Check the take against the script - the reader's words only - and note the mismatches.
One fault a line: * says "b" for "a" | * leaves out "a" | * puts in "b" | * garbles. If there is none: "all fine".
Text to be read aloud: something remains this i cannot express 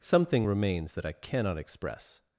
* says "that" for "this"